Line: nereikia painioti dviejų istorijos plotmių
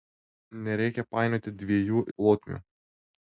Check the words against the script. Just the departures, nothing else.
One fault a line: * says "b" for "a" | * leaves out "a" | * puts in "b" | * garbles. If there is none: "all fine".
* leaves out "istorijos"